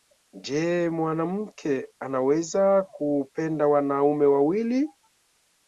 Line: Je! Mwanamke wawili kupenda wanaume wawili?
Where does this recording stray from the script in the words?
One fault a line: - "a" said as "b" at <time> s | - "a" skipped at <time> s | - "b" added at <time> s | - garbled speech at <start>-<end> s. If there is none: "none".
- "wawili" said as "anaweza" at 2.0 s